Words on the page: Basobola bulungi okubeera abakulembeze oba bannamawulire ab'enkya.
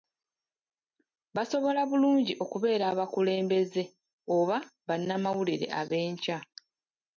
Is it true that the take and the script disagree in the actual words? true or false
false